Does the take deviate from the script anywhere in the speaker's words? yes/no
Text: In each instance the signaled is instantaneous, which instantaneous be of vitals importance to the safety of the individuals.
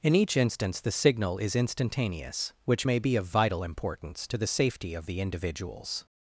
yes